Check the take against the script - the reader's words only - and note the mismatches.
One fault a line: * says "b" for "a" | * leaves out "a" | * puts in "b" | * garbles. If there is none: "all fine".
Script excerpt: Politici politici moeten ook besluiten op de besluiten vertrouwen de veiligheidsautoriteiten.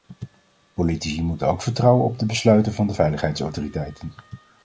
* leaves out "politici"
* says "vertrouwen" for "besluiten"
* says "van" for "vertrouwen"